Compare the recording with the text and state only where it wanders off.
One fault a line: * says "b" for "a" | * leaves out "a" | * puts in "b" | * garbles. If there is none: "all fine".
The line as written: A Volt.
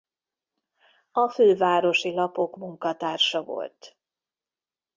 * puts in "Fővárosi Lapok munkatársa"